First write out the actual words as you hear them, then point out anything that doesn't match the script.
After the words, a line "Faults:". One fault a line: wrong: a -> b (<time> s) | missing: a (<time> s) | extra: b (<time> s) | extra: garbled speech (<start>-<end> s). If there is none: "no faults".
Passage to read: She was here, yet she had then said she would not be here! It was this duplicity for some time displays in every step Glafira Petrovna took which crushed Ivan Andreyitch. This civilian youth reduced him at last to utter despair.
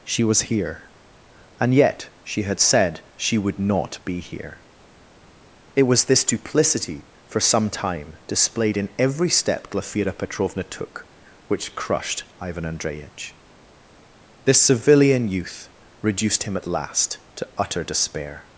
She was here, and yet she had said she would not be here! It was this duplicity for some time displayed in every step Glafira Petrovna took which crushed Ivan Andreyitch. This civilian youth reduced him at last to utter despair.
Faults:
extra: and (1.6 s)
missing: then (2.6 s)
wrong: displays -> displayed (8.3 s)